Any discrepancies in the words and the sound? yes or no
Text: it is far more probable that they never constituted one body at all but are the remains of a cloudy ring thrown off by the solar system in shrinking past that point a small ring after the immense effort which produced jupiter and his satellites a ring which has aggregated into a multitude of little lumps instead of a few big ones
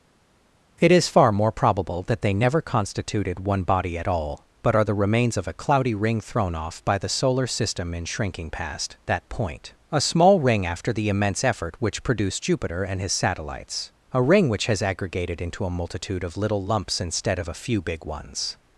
no